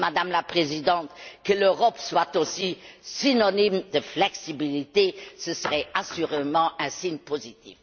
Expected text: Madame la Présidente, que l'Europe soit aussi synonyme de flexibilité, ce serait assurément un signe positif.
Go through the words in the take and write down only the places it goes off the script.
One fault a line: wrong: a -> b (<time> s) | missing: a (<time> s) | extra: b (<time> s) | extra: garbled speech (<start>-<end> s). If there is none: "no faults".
no faults